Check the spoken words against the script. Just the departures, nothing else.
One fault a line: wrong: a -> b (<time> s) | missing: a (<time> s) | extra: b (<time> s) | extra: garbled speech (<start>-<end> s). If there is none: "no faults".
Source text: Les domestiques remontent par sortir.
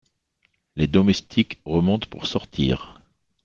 wrong: par -> pour (2.1 s)